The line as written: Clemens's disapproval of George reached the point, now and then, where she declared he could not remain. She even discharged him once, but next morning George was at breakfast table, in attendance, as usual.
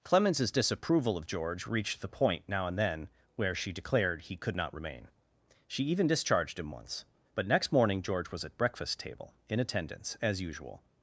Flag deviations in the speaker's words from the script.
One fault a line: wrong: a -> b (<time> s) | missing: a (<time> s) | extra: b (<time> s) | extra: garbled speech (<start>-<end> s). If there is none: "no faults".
no faults